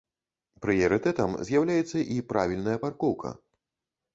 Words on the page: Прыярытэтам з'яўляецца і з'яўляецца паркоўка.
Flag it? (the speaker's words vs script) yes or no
yes